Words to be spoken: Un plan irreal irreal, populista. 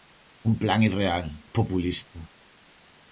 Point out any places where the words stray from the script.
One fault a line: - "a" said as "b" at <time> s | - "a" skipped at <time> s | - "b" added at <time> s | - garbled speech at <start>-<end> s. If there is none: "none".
- "irreal" skipped at 1.3 s